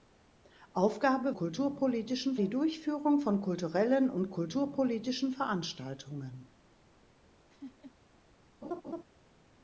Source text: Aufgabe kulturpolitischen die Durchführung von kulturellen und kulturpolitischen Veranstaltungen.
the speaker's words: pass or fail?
pass